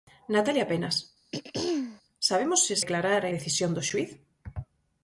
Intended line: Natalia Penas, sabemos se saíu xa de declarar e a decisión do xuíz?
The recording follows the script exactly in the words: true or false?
false